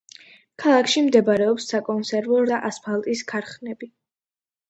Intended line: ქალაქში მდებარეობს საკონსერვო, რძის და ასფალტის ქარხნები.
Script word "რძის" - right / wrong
wrong